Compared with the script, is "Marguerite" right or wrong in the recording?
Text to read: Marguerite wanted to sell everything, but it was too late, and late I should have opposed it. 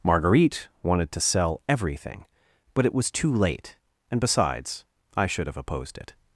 right